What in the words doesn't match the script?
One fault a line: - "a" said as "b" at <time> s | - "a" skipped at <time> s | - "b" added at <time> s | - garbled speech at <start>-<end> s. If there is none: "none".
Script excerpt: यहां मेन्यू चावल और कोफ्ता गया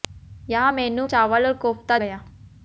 none